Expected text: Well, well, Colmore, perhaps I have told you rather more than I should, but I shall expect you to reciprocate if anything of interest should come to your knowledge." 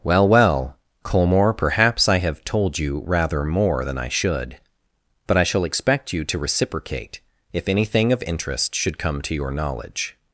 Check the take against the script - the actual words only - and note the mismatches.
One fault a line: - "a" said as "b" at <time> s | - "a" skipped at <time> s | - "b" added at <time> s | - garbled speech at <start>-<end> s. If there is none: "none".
none